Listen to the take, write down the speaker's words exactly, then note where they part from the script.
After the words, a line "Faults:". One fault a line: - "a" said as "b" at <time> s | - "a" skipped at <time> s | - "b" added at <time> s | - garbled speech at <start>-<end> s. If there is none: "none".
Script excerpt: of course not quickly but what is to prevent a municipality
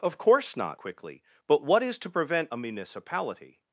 of course not quickly but what is to prevent a municipality
Faults:
none